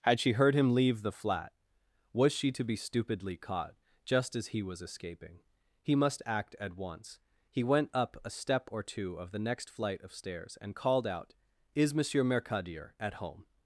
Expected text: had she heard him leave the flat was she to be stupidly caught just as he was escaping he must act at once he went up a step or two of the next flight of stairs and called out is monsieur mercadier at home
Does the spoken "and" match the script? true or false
true